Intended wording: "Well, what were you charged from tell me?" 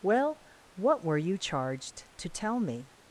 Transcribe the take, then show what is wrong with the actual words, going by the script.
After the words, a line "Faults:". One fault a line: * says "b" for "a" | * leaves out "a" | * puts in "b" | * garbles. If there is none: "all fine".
"Well, what were you charged to tell me?"
Faults:
* says "to" for "from"